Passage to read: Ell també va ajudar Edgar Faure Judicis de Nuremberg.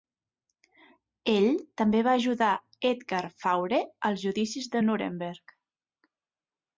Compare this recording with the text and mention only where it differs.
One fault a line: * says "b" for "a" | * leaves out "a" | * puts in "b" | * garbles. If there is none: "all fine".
* puts in "als"